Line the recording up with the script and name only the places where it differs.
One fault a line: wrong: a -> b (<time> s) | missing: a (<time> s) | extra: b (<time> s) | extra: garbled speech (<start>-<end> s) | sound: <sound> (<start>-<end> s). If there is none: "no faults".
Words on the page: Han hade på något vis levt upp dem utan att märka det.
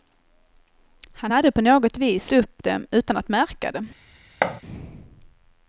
missing: levt (2.3 s)
sound: thud (4.4-4.6 s)